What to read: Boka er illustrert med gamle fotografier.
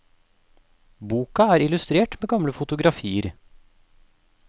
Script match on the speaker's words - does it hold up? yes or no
yes